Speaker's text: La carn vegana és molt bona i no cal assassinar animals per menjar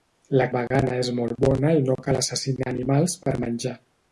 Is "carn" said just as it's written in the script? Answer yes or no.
no